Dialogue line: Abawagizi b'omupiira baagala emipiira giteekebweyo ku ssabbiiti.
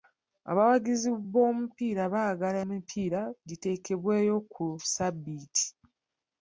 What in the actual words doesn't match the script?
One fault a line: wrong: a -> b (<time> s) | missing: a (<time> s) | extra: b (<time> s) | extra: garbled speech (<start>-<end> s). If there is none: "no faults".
no faults